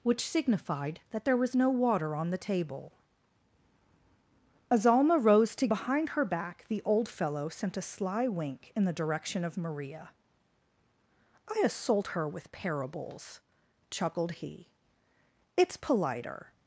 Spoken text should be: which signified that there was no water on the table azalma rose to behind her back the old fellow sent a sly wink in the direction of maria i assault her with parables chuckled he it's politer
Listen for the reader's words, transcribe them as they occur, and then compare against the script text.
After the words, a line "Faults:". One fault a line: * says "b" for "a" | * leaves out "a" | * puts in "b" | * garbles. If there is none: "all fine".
which signified that there was no water on the table azalma rose to behind her back the old fellow sent a sly wink in the direction of maria i assault her with parables chuckled he it's politer
Faults:
all fine